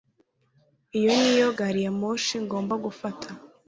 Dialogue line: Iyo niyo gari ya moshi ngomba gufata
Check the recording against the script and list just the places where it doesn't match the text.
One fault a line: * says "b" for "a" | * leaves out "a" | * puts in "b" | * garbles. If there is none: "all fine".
all fine